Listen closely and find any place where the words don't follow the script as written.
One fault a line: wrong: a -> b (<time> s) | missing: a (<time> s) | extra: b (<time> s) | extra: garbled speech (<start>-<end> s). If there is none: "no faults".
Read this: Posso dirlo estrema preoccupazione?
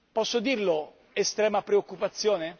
no faults